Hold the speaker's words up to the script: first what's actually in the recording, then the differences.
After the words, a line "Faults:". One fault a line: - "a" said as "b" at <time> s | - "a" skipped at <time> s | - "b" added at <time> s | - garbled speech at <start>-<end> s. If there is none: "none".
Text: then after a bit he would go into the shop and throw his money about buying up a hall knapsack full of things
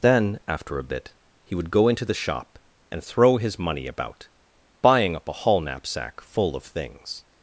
then after a bit he would go into the shop and throw his money about buying up a hall knapsack full of things
Faults:
none